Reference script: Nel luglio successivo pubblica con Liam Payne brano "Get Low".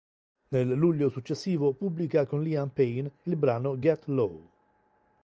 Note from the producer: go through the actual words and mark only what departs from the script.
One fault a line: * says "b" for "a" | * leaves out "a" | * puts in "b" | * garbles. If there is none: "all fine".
* puts in "il"